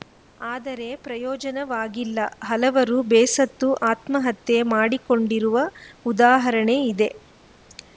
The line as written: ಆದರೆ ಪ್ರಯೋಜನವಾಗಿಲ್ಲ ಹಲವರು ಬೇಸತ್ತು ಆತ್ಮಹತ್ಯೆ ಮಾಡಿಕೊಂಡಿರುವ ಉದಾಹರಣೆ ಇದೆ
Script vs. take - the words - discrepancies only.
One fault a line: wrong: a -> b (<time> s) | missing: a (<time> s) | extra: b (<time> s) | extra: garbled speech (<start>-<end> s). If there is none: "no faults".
no faults